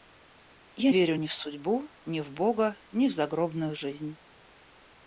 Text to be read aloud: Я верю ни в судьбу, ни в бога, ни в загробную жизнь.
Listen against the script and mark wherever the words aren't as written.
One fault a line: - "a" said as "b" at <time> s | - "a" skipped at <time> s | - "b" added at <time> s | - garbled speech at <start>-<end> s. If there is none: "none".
none